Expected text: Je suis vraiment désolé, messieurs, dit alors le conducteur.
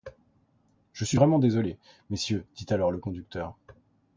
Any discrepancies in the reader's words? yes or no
no